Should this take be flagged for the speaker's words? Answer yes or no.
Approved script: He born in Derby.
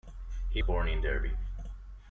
no